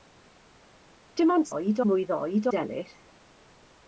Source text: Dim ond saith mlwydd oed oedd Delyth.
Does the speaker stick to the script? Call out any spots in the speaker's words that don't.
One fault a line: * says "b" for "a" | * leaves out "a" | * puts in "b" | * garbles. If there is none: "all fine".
* says "oed" for "saith"
* leaves out "oedd"